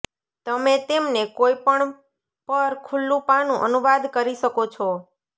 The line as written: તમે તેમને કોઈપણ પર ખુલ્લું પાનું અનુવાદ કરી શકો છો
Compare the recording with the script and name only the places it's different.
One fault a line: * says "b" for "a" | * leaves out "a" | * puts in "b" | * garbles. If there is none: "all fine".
all fine